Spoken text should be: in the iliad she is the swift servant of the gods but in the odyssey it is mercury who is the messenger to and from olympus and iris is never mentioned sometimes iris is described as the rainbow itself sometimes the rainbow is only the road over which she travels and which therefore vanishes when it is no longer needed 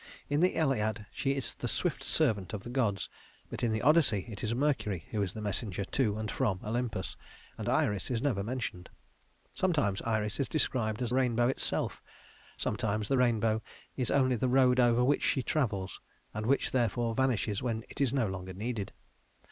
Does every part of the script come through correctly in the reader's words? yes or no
no